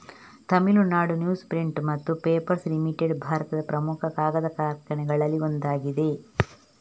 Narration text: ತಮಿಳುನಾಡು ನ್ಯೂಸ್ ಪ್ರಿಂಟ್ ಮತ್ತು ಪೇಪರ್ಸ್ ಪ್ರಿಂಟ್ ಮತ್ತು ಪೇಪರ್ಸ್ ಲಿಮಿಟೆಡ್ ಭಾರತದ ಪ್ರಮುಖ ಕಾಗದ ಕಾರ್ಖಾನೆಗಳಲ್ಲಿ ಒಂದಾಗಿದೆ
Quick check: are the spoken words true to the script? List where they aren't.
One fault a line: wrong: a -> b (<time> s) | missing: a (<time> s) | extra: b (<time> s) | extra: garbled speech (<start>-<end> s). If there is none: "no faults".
missing: ಪ್ರಿಂಟ್ ಮತ್ತು ಪೇಪರ್ಸ್ (2.6 s)